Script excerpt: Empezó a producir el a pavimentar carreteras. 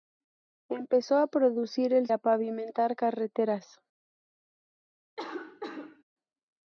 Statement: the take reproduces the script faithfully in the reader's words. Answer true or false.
true